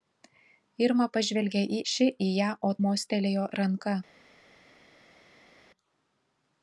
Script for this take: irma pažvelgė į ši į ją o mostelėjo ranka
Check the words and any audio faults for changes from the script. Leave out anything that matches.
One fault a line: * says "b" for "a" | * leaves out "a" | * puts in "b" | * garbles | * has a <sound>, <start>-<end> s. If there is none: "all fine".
all fine